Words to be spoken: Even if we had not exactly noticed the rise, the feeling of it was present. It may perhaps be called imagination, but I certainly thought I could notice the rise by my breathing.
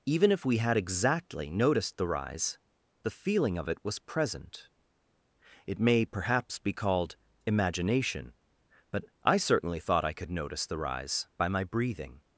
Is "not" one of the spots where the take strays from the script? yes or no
yes